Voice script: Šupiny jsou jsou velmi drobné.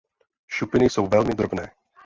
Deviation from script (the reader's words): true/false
true